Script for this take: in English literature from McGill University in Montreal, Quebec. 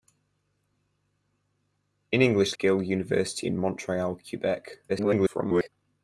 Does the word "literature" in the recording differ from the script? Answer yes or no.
yes